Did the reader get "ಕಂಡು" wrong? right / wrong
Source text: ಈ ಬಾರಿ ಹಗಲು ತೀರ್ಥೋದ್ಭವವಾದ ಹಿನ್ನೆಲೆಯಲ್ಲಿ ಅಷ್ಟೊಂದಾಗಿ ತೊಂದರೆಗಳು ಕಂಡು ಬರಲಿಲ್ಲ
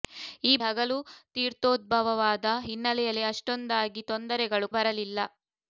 wrong